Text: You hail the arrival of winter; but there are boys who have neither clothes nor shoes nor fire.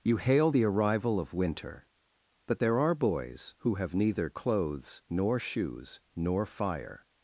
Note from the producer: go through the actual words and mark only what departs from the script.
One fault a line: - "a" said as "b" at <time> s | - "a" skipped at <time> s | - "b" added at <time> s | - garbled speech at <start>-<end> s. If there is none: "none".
none